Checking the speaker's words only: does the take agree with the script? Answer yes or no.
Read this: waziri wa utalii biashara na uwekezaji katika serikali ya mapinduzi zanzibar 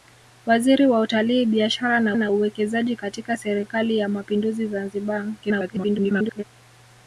no